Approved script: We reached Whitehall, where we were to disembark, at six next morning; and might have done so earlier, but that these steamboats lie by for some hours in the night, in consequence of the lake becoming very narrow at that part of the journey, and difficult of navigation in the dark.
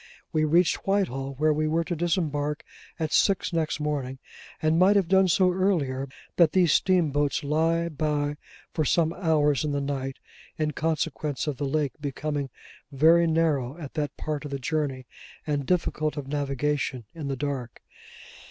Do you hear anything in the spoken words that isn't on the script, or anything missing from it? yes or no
no